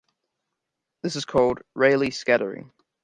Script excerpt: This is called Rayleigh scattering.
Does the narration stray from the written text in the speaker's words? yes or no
no